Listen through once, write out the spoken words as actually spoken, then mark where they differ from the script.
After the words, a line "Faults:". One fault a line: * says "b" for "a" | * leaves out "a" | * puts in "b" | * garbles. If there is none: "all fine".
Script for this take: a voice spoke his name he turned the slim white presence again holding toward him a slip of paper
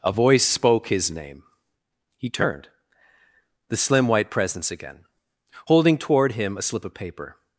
a voice spoke his name he turned the slim white presence again holding toward him a slip of paper
Faults:
all fine